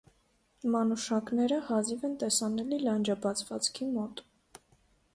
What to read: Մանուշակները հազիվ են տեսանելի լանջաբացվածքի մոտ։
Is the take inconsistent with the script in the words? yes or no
no